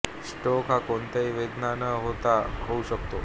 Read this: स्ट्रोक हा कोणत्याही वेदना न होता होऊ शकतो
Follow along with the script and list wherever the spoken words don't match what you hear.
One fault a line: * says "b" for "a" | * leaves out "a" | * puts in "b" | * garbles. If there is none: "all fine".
all fine